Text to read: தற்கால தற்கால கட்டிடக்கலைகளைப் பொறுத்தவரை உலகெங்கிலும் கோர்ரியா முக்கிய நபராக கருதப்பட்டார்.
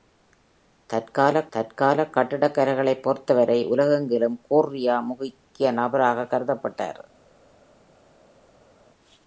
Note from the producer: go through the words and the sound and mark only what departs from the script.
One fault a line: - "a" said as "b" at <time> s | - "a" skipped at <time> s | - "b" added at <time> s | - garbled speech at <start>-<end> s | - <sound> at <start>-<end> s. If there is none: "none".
none